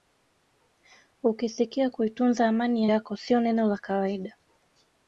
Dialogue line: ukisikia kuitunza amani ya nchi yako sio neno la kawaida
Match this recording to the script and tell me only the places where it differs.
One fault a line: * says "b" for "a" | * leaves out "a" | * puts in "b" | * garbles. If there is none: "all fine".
* leaves out "nchi"